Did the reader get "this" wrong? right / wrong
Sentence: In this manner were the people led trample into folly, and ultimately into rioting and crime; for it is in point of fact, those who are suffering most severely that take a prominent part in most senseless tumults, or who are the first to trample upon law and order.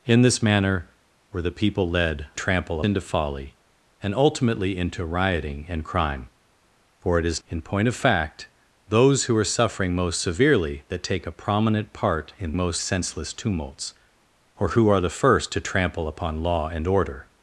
right